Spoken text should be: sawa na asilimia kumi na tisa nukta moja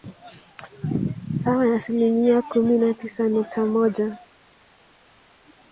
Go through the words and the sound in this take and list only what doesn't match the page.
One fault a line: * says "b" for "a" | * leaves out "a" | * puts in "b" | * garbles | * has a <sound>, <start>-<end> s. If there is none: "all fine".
all fine